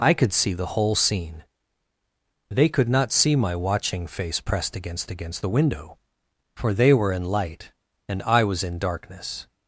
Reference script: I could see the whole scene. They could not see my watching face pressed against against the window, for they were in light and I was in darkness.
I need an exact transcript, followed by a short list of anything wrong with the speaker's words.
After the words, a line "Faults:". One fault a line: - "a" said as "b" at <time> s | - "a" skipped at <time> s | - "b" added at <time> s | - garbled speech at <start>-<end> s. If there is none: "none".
I could see the whole scene. They could not see my watching face pressed against against the window, for they were in light and I was in darkness.
Faults:
none